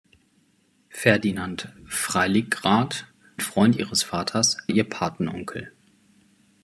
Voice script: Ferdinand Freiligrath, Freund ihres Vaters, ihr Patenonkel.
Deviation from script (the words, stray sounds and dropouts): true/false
false